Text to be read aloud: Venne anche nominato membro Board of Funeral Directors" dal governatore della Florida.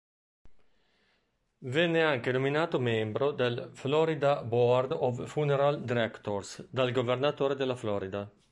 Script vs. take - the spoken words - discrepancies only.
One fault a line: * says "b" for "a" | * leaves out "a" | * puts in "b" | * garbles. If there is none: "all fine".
* puts in "del Florida"